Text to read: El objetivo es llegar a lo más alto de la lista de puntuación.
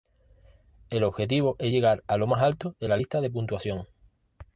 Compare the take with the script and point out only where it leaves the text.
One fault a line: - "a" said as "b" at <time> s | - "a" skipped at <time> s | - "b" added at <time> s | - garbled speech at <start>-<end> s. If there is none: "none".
none